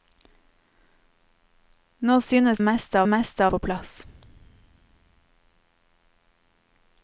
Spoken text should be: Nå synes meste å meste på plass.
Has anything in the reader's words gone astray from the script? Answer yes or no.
no